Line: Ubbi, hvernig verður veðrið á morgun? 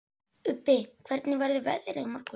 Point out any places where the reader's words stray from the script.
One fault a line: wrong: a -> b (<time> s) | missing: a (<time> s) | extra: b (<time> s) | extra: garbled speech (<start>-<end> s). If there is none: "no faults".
no faults